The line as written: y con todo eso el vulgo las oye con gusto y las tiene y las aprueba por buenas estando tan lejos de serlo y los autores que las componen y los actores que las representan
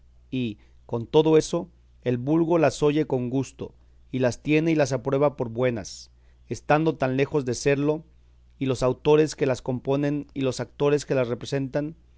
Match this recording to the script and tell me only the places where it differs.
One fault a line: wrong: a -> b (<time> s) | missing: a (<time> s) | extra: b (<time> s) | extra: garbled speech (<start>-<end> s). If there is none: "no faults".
no faults